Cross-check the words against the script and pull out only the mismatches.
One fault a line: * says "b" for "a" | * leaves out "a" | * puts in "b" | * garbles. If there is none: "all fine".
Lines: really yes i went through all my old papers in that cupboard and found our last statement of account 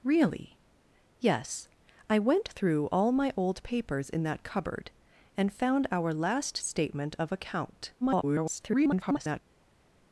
* garbles